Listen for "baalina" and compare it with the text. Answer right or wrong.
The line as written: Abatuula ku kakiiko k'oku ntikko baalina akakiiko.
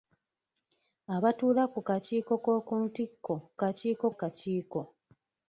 wrong